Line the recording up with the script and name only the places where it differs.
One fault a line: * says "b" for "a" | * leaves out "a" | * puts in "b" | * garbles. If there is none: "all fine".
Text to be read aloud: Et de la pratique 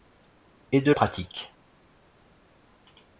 * leaves out "la"